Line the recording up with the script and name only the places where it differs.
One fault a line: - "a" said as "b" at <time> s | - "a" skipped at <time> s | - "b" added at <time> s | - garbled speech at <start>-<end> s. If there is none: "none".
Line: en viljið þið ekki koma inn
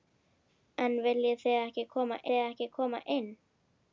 - "þið ekki koma" added at 2.3 s